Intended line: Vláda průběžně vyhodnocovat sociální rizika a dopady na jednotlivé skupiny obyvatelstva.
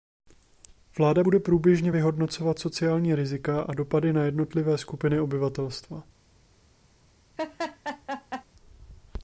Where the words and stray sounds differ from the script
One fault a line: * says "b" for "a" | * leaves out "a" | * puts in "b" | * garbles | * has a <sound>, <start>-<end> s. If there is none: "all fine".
* puts in "bude"
* has a laugh, 7.4-8.4 s